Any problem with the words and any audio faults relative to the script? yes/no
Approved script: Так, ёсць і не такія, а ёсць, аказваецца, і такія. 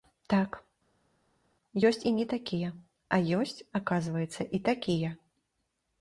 no